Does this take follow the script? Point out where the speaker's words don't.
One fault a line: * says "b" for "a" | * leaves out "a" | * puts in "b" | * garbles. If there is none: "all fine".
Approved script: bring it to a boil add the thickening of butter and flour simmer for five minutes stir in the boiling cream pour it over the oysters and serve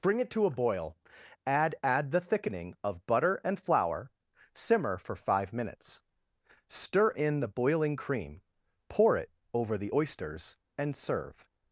* puts in "add"